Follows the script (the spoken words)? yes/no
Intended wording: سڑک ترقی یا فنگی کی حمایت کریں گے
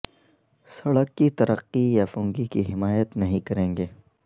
no